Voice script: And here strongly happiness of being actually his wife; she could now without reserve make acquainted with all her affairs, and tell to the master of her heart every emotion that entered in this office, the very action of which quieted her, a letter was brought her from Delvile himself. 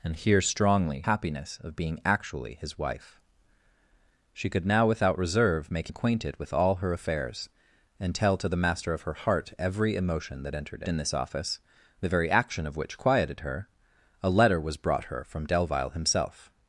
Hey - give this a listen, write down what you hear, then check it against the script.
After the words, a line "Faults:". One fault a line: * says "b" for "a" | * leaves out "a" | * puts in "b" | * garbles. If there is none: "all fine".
And here strongly happiness of being actually his wife; she could now without reserve make acquainted with all her affairs, and tell to the master of her heart every emotion that entered in this office, the very action of which quieted her, a letter was brought her from Delvile himself.
Faults:
all fine